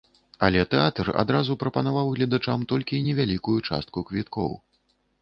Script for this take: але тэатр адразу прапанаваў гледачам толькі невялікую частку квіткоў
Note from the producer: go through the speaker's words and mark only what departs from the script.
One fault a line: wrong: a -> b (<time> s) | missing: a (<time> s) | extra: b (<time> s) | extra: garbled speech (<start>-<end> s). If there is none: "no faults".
no faults